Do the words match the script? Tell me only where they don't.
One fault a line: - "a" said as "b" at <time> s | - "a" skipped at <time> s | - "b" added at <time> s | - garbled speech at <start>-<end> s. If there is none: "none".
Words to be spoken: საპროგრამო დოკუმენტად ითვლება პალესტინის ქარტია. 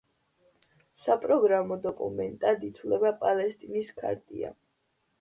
none